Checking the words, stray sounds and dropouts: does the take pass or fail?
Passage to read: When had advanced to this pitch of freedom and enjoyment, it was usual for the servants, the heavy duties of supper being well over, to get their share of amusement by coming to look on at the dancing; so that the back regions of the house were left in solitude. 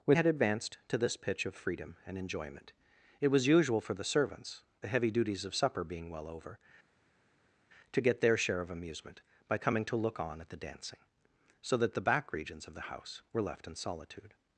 pass